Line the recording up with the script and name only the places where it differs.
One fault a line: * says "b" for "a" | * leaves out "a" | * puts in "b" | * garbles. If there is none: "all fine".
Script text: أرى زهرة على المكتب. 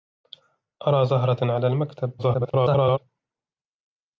* garbles